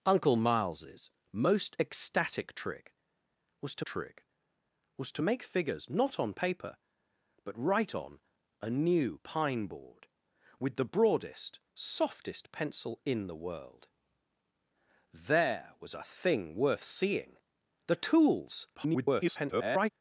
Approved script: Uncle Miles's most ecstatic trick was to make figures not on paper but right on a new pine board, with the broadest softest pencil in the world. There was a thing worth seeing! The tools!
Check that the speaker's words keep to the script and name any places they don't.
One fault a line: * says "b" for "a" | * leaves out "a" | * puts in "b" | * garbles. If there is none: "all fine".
* puts in "trick was to"
* garbles